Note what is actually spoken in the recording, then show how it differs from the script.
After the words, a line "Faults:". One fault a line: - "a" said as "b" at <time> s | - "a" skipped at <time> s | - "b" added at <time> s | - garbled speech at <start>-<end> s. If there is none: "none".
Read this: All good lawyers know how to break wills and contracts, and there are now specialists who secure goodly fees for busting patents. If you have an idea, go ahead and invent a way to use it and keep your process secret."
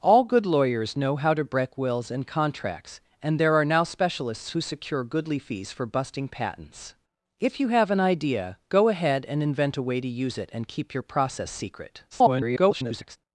All good lawyers know how to break wills and contracts, and there are now specialists who secure goodly fees for busting patents. If you have an idea, go ahead and invent a way to use it and keep your process secret." [garbled]
Faults:
- garbled speech at 12.1-13.2 s